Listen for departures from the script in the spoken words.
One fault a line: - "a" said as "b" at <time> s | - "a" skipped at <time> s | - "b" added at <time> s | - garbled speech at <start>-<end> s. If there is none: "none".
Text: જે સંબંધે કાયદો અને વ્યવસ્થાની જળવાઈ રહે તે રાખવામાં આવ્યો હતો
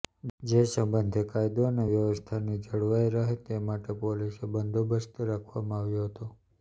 - "માટે પોલીસ બંદોબસ્ત" added at 3.7 s